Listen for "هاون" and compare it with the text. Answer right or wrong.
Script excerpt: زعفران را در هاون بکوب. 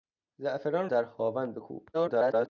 right